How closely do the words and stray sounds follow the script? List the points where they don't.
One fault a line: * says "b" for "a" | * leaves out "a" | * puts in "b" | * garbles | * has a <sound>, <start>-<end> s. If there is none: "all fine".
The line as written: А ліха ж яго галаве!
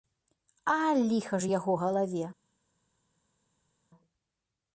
all fine